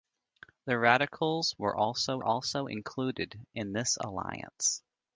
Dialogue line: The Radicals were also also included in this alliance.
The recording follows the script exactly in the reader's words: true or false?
true